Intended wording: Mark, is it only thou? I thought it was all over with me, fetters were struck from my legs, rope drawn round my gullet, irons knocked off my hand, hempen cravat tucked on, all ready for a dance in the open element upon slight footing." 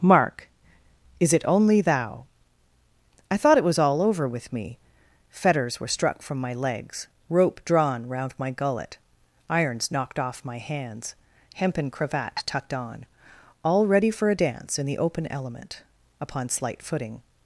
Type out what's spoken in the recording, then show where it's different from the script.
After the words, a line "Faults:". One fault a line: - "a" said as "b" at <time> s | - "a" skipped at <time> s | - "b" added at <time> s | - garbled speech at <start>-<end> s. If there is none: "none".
Mark, is it only thou? I thought it was all over with me, fetters were struck from my legs, rope drawn round my gullet, irons knocked off my hands, hempen cravat tucked on, all ready for a dance in the open element upon slight footing."
Faults:
- "hand" said as "hands" at 10.6 s